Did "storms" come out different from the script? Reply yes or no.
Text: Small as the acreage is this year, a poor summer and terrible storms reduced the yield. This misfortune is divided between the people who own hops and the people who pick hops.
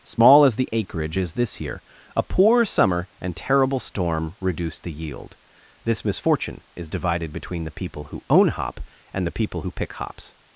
yes